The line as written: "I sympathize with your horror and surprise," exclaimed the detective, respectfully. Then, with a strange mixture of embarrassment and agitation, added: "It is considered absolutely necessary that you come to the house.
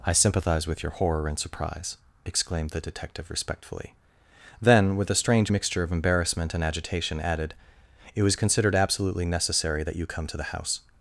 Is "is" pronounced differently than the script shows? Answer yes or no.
yes